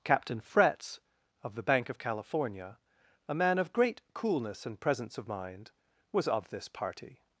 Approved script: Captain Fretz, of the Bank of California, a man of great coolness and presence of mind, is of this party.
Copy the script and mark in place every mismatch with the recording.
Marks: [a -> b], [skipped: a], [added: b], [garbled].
Captain Fretz, of the Bank of California, a man of great coolness and presence of mind, [is -> was] of this party.